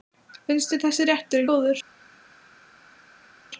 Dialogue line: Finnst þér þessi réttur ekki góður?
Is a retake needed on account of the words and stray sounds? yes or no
yes